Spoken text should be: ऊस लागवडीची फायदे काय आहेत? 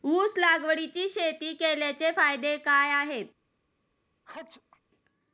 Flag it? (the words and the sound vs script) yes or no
yes